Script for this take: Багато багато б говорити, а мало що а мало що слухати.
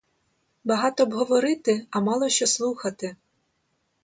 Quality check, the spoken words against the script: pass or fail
fail